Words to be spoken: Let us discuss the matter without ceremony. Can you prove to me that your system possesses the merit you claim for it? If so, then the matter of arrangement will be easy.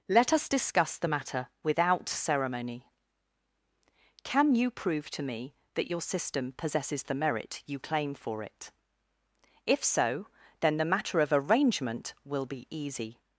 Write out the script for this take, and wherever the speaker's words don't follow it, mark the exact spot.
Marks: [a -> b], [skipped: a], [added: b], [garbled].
Let us discuss the matter without ceremony. Can you prove to me that your system possesses the merit you claim for it? If so, then the matter of arrangement will be easy.